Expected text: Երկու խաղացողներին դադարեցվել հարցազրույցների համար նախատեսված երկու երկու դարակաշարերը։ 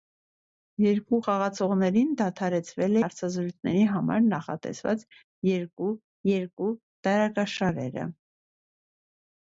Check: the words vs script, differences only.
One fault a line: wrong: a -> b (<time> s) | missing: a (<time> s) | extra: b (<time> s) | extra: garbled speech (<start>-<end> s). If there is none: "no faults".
no faults